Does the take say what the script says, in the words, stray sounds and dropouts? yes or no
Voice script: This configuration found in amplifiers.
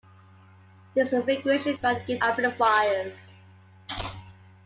yes